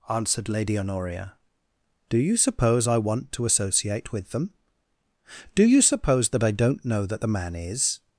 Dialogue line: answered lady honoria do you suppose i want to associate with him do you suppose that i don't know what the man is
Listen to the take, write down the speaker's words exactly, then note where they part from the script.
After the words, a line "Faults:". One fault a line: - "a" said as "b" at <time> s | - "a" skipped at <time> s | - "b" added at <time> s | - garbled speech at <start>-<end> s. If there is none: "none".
answered lady honoria do you suppose i want to associate with them do you suppose that i don't know that the man is
Faults:
- "him" said as "them" at 4.3 s
- "what" said as "that" at 7.0 s